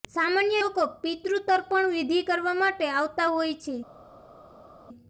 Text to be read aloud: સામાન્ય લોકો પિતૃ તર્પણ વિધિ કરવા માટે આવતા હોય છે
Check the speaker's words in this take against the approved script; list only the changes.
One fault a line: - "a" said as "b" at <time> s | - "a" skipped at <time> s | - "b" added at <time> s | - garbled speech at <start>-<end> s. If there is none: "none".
none